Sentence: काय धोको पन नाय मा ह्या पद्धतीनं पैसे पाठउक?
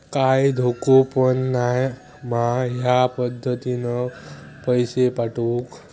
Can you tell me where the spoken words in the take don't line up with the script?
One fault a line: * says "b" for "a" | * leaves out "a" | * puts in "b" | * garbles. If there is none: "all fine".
all fine